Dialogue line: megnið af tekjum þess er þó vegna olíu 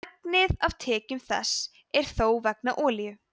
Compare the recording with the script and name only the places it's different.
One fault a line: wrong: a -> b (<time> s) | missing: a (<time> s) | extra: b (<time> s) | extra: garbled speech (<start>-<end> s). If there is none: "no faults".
no faults